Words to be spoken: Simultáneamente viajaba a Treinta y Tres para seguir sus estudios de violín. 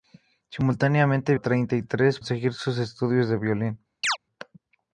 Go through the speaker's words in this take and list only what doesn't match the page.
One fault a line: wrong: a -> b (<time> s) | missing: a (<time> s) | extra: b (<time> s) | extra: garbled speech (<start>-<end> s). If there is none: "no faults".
missing: viajaba (1.4 s)
missing: para (2.2 s)